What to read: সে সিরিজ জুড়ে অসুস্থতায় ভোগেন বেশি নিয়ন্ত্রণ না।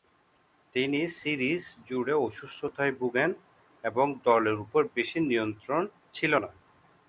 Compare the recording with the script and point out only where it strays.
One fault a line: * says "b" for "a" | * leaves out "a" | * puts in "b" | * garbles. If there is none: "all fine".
* says "তিনি" for "সে"
* puts in "এবং দলের উপর"
* puts in "ছিল"